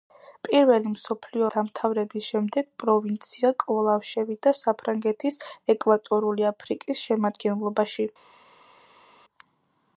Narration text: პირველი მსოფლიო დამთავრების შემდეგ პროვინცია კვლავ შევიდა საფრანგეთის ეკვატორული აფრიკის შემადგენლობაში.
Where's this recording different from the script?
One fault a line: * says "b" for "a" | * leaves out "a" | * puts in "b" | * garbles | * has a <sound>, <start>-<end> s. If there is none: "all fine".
all fine